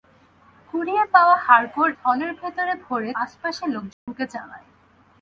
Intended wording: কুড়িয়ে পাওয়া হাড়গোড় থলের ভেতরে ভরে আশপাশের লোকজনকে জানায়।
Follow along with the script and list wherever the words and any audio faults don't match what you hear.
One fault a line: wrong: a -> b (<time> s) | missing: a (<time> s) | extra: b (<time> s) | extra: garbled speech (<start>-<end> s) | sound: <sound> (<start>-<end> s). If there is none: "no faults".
sound: dropout (3.9-4.1 s)